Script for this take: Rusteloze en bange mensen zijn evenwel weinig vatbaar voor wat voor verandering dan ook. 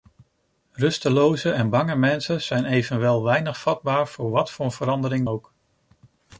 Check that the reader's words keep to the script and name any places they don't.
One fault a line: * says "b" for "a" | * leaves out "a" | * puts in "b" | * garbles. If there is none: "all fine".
* leaves out "dan"